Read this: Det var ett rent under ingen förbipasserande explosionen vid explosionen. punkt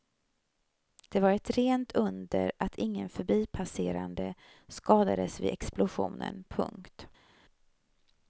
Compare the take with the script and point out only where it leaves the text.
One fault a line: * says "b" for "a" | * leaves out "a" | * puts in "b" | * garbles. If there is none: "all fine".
* puts in "att"
* says "skadades" for "explosionen"